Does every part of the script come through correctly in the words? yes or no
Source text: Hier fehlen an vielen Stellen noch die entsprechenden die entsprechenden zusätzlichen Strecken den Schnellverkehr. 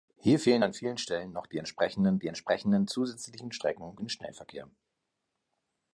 yes